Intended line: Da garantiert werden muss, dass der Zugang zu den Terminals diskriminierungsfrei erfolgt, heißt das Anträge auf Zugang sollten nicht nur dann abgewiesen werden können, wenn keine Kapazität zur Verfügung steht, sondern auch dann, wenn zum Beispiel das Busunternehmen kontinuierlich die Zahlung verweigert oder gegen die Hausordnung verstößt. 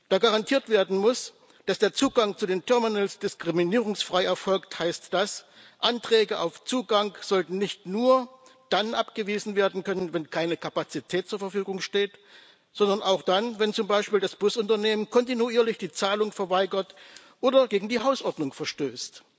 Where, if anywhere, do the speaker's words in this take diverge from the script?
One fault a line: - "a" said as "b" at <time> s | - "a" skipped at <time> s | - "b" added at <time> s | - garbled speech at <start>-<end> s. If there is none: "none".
none